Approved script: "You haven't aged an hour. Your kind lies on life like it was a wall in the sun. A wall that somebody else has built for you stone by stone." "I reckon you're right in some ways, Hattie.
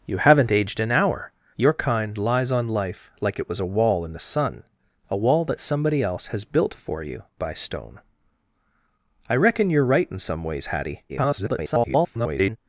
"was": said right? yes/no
yes